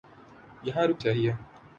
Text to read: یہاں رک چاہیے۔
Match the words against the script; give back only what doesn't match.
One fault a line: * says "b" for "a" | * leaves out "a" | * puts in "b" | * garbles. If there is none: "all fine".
all fine